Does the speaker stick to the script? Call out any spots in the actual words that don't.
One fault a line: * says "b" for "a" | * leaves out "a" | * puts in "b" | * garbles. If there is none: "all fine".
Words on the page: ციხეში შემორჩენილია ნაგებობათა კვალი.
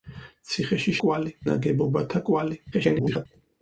* says "კვალი" for "შემორჩენილია"
* garbles